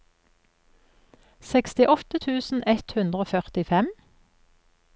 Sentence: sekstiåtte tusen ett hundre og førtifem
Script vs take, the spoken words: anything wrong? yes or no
no